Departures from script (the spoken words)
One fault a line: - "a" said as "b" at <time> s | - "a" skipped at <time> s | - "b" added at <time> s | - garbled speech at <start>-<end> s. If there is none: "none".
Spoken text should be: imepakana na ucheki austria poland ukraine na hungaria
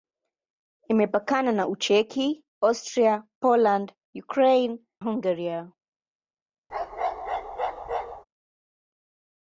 - "na" skipped at 4.8 s